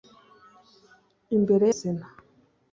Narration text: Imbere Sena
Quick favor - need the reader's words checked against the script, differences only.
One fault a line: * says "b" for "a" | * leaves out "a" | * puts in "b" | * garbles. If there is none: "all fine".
all fine